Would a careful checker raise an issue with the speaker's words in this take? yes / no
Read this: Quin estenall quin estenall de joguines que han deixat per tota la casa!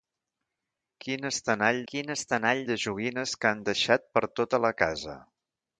no